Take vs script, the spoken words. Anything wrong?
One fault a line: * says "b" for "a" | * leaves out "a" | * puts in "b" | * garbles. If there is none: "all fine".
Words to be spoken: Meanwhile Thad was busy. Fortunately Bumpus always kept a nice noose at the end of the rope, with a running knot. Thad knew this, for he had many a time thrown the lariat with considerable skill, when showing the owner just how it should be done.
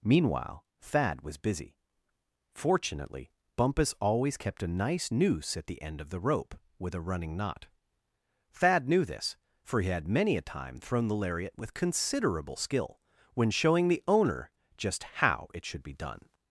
all fine